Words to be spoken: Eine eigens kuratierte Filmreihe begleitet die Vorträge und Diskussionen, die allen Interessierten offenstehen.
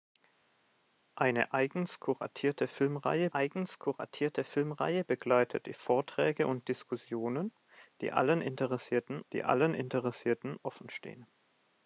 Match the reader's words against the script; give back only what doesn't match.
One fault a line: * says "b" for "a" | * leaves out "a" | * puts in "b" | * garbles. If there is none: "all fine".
* puts in "eigens kuratierte Filmreihe"
* puts in "die allen Interessierten"